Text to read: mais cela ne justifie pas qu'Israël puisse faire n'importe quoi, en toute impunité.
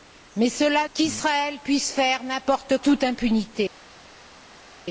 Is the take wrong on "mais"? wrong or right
right